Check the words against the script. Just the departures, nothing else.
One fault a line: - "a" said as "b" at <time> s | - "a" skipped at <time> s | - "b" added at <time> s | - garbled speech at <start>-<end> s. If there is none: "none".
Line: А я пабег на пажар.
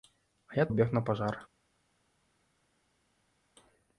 none